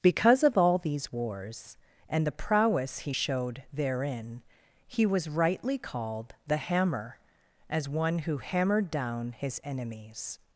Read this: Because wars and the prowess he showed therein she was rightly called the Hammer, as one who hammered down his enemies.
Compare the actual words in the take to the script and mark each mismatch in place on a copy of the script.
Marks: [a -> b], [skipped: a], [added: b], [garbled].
Because [added: of all these] wars and the prowess he showed therein [she -> he] was rightly called the Hammer, as one who hammered down his enemies.